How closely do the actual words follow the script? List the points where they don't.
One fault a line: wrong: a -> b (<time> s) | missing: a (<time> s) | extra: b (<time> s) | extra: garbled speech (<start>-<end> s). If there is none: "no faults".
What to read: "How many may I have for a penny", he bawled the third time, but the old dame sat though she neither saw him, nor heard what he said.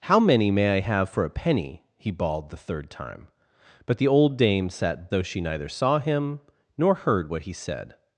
no faults